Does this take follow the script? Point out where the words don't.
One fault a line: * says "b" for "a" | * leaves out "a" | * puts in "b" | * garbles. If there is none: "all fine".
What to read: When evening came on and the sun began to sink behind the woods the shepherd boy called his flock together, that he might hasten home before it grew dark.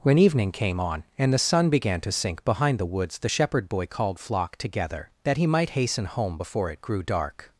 * leaves out "his"